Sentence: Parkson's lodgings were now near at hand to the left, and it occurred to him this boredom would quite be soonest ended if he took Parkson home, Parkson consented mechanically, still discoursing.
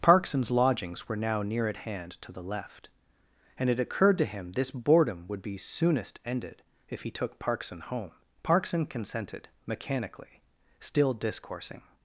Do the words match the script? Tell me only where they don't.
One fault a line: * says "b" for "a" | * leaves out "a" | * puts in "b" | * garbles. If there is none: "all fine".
* leaves out "quite"